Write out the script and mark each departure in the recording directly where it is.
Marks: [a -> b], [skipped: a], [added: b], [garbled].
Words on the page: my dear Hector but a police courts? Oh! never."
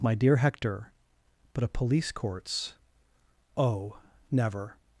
my dear Hector but a police courts? Oh! never."